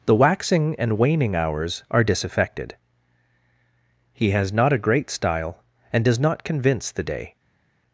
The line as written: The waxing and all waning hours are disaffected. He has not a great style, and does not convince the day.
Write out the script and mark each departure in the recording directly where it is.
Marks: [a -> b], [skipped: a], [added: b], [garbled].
The waxing and [skipped: all] waning hours are disaffected. He has not a great style, and does not convince the day.